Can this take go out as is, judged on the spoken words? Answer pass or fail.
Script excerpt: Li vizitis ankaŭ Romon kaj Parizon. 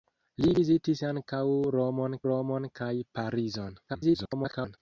fail